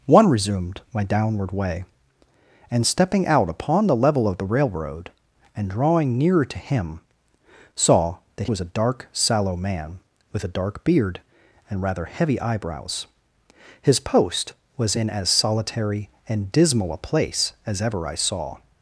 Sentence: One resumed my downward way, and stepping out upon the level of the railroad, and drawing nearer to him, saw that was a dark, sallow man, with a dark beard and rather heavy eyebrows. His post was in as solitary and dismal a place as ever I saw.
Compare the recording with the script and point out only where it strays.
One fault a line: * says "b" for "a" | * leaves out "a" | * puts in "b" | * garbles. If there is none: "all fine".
all fine